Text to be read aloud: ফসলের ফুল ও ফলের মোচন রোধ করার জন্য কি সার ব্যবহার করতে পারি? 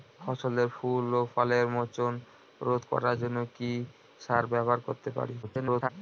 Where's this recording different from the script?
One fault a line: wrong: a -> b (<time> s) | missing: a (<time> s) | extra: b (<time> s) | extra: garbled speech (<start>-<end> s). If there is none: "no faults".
extra: garbled speech (5.4-5.9 s)